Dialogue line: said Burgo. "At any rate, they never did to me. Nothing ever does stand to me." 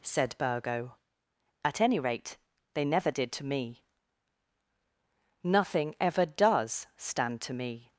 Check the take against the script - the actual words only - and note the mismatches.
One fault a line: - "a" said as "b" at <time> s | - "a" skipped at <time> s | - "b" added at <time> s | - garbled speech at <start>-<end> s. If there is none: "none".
none